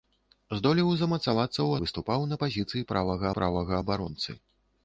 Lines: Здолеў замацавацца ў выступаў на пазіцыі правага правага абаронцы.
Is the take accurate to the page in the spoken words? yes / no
yes